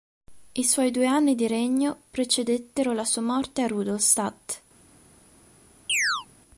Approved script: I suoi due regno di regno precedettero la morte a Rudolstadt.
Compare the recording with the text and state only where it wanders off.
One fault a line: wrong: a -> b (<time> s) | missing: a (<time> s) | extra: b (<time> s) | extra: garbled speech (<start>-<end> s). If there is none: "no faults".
wrong: regno -> anni (1.1 s)
extra: sua (3.0 s)